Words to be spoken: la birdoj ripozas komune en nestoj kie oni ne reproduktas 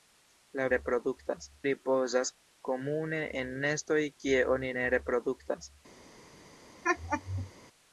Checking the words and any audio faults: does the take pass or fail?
fail